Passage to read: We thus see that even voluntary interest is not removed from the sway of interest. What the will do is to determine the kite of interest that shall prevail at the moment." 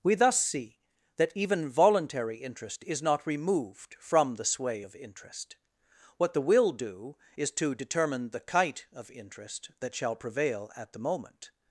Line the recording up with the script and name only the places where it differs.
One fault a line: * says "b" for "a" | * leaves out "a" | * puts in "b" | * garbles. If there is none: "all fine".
all fine